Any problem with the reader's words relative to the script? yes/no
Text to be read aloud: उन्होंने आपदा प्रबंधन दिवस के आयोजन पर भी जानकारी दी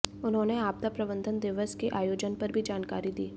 no